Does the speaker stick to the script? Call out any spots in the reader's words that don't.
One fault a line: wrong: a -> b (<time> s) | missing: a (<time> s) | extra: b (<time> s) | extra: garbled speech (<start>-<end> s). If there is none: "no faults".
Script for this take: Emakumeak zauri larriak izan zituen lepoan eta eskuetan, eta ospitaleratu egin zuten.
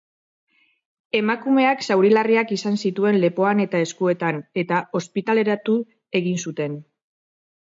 no faults